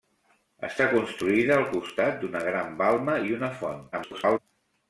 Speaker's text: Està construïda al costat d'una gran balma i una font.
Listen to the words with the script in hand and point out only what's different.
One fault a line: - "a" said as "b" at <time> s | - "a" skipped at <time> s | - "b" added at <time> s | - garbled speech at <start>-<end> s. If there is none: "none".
- garbled speech at 3.9-4.4 s